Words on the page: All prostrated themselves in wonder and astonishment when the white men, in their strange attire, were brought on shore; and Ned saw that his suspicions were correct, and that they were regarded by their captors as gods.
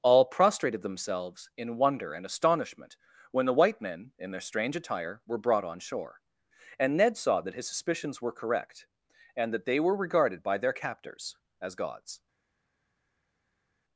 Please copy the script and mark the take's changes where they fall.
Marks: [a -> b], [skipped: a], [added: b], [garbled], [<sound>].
All prostrated themselves in wonder and astonishment when the white men, in their strange attire, were brought on shore; and Ned saw that his suspicions were correct, and that they were regarded by their captors as gods.